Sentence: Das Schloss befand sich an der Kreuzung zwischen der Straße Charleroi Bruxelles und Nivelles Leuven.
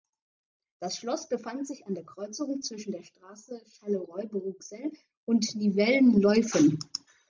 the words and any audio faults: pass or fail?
pass